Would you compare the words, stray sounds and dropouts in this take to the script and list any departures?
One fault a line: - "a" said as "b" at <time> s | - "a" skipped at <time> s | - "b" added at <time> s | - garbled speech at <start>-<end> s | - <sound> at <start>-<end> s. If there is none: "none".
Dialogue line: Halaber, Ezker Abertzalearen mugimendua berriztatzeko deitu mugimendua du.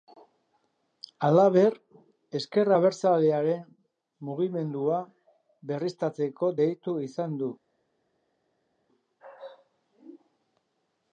- "mugimendua" said as "izan" at 7.1 s